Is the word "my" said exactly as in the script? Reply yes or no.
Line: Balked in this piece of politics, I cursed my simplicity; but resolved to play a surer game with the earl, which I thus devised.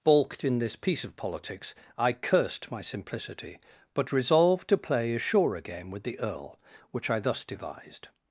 yes